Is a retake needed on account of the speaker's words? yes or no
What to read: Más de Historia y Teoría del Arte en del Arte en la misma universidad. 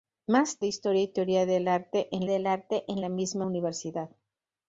no